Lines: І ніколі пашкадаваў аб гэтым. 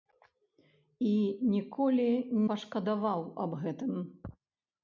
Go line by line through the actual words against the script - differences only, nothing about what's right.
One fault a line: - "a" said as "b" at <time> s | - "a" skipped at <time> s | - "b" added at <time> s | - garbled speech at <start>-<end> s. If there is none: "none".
none